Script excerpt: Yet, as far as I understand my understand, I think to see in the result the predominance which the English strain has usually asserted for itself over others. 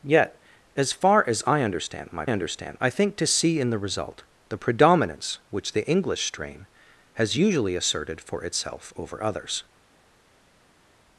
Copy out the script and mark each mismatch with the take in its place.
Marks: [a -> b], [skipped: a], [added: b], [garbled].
Yet, as far as I understand my understand, I think to see in the result the predominance which the English strain has usually asserted for itself over others.